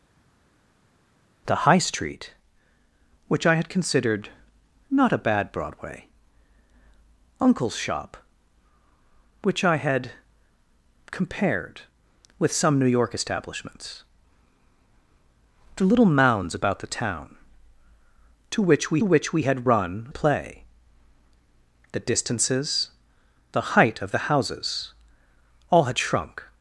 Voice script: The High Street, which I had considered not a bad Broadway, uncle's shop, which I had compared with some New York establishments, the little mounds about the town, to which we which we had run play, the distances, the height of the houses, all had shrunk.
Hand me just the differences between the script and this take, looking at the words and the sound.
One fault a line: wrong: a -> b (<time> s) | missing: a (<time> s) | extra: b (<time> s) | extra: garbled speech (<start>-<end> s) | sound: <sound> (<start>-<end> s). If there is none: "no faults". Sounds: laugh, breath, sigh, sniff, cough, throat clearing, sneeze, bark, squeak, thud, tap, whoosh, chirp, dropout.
no faults